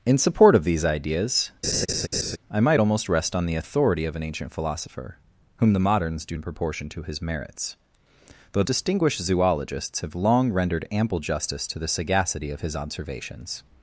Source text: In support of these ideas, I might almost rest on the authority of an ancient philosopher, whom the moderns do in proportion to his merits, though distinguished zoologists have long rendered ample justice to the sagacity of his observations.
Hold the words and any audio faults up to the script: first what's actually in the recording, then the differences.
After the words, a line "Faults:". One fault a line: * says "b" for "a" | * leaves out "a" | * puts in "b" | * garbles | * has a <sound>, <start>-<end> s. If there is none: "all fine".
In support of these ideas, I might almost rest on the authority of an ancient philosopher, whom the moderns do in proportion to his merits, though distinguished zoologists have long rendered ample justice to the sagacity of his observations.
Faults:
* has a laugh, 1.6-2.4 s